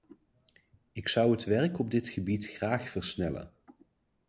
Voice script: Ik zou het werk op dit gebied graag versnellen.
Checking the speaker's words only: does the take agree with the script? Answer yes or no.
yes